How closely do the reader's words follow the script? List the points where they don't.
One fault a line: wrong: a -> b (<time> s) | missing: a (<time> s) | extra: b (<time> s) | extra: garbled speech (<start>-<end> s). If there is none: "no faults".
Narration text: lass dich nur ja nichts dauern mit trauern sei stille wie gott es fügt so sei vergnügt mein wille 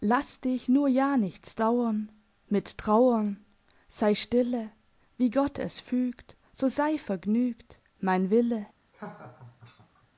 no faults